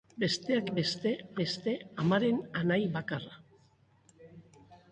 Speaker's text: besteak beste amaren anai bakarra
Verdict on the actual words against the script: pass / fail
fail